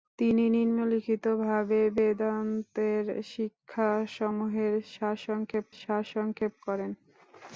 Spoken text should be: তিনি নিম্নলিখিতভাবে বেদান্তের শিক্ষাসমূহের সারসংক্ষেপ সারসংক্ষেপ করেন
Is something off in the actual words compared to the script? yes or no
no